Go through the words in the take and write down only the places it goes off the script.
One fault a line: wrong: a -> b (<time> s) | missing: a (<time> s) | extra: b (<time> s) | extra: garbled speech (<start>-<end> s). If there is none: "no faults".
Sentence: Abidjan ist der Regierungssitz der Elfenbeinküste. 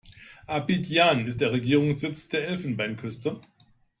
no faults